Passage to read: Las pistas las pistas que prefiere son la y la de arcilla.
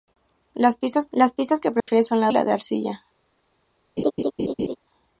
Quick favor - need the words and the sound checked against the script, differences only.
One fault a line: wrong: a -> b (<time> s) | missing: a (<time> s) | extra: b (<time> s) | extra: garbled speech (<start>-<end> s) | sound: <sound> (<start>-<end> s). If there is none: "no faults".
sound: dropout (1.8-1.9 s)
sound: laugh (4.0-4.8 s)